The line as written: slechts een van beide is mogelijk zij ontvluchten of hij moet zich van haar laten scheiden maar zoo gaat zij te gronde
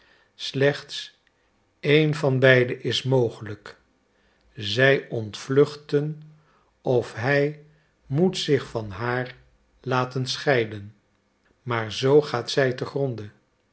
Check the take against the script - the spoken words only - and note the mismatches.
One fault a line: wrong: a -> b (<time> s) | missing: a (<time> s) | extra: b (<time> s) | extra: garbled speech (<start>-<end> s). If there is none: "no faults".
no faults